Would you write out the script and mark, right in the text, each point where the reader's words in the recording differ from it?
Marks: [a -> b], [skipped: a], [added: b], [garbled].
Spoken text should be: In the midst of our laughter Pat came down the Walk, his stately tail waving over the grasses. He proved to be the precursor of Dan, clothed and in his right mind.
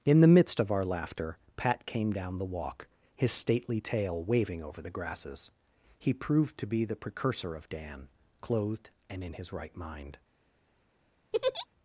In the midst of our laughter Pat came down the Walk, his stately tail waving over the grasses. He proved to be the precursor of Dan, clothed and in his right mind.